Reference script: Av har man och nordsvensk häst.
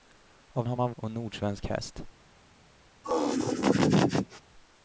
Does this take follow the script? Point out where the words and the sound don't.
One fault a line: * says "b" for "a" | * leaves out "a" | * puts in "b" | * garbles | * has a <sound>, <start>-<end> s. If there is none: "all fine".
* has a laugh, 3.0-4.4 s